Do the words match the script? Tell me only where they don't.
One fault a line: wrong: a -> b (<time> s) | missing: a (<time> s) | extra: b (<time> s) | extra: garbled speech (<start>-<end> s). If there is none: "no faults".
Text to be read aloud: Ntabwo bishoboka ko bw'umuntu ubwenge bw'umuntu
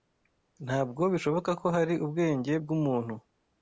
wrong: bw'umuntu -> hari (1.8 s)